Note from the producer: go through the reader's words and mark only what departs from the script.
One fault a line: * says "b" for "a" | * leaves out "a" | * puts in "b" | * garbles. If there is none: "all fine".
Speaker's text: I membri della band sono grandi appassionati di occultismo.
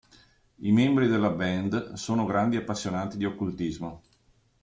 all fine